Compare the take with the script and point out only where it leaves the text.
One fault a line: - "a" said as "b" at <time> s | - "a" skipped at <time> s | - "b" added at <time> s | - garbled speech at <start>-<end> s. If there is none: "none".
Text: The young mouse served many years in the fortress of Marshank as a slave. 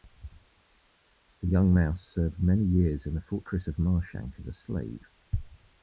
none